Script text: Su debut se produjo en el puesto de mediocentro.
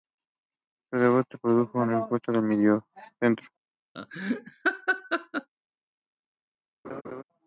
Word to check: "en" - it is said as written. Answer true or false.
true